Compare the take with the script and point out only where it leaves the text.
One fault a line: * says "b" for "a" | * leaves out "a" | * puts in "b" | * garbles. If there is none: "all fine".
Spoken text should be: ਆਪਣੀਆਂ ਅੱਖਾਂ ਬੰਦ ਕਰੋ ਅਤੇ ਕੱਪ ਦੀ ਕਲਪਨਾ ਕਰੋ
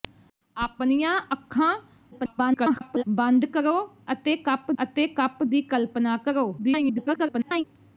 * garbles
* puts in "ਅਤੇ ਕੱਪ"
* garbles